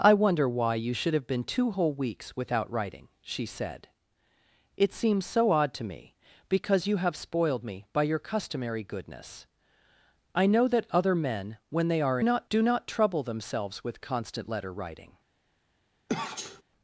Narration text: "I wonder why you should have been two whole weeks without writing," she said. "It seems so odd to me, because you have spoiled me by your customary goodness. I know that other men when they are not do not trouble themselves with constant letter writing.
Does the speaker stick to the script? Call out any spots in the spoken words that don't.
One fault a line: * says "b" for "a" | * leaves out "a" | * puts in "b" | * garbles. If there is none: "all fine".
all fine